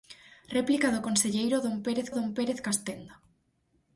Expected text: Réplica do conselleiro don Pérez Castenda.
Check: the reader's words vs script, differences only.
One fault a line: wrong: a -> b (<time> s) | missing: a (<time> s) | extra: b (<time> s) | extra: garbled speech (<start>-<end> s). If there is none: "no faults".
extra: don Pérez (2.2 s)